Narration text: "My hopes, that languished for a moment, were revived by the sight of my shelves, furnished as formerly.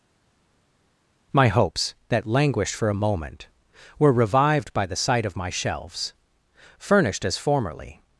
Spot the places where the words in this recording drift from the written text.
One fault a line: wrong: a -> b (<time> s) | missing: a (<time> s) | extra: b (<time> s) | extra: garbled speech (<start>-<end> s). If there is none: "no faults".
no faults